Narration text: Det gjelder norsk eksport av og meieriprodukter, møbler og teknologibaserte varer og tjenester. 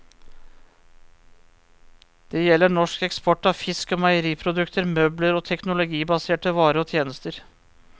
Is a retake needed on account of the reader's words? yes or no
yes